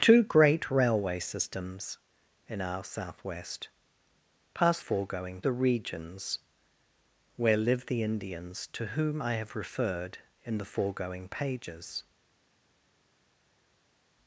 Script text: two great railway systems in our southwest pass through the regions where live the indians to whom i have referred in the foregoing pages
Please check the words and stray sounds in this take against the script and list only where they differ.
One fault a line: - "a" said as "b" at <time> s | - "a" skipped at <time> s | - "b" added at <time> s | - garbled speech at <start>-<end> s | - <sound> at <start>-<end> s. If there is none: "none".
- "through" said as "foregoing" at 4.8 s